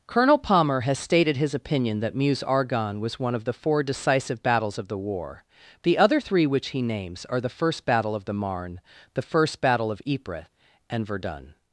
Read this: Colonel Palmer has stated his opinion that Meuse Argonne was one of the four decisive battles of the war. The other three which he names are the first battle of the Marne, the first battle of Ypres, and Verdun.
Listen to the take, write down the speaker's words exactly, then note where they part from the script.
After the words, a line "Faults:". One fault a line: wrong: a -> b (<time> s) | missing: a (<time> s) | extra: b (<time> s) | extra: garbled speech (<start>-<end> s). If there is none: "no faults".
Colonel Palmer has stated his opinion that Meuse Argonne was one of the four decisive battles of the war. The other three which he names are the first battle of the Marne, the first battle of Ypres, and Verdun.
Faults:
no faults